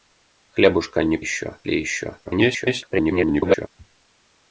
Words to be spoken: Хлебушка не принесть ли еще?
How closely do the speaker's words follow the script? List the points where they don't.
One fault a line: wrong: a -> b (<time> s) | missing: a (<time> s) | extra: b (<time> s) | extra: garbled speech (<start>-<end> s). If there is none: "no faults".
wrong: принесть -> еще (1.2 s)
extra: garbled speech (2.2-3.7 s)